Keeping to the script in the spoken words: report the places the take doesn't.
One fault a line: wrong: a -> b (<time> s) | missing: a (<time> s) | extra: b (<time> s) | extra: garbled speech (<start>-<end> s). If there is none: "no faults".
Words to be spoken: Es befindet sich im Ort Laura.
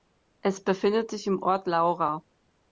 no faults